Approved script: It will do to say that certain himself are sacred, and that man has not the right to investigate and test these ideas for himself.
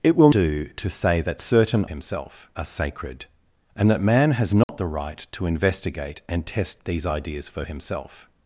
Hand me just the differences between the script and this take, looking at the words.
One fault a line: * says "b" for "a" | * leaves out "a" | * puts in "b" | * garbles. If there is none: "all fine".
all fine